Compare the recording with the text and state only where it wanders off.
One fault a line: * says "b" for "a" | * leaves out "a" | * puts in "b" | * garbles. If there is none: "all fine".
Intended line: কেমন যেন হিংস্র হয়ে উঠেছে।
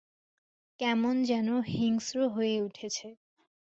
all fine